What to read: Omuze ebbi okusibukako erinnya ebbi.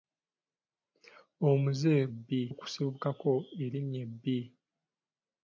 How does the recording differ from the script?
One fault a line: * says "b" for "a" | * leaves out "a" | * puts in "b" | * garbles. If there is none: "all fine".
all fine